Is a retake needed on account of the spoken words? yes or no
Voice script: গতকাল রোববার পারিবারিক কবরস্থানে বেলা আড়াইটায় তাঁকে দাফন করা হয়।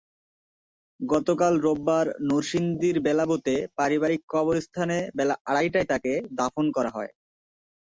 yes